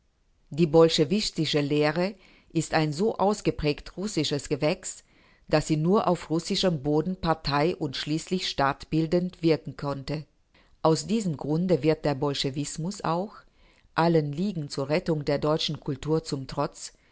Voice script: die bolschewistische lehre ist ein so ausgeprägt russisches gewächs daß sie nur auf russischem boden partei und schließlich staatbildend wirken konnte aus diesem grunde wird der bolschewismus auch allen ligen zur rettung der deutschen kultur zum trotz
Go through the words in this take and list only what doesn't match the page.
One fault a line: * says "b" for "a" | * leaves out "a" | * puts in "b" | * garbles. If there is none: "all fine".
all fine